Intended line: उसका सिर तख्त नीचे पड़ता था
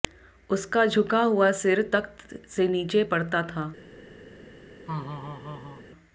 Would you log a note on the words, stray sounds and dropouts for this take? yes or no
yes